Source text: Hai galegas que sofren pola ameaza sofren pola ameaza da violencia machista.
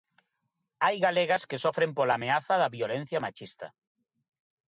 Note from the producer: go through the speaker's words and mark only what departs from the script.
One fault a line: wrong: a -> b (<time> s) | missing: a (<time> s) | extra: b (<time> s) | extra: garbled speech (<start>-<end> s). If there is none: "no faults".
missing: sofren pola ameaza (2.5 s)